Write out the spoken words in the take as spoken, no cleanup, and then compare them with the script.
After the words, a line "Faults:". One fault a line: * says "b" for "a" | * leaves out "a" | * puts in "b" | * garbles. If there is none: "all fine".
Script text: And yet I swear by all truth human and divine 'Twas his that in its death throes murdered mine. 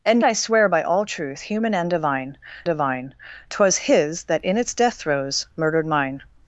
And I swear by all truth human and divine divine 'Twas his that in its death throes murdered mine.
Faults:
* leaves out "yet"
* puts in "divine"